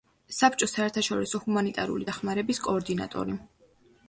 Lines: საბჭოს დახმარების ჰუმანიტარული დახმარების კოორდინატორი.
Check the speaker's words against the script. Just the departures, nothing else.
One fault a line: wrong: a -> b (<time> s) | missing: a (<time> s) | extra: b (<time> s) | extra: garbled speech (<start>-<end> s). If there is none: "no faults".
wrong: დახმარების -> საერთაშორისო (0.8 s)